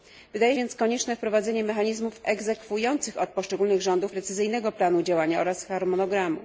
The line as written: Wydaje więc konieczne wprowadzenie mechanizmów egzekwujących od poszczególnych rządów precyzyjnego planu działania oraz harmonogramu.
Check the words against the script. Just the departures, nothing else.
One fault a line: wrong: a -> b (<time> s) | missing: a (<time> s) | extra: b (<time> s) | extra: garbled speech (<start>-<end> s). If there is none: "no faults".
no faults